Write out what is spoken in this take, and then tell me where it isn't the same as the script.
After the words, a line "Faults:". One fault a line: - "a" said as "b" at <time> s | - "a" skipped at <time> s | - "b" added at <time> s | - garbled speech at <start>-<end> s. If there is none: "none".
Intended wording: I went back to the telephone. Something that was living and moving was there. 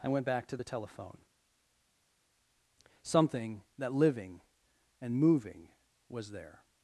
I went back to the telephone. Something that living and moving was there.
Faults:
- "was" skipped at 3.9 s